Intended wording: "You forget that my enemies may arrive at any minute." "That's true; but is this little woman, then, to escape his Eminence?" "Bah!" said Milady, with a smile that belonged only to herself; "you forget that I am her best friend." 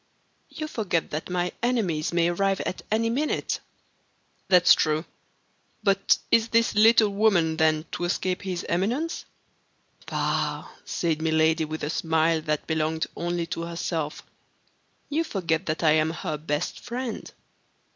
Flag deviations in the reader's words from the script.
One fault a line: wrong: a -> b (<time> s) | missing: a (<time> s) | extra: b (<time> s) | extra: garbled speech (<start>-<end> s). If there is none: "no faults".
no faults